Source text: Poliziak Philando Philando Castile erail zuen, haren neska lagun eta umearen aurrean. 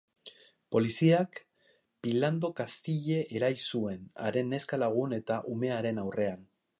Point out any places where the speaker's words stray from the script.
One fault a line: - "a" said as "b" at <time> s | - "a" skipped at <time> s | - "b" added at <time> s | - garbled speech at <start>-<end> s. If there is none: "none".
- "Philando" skipped at 2.5 s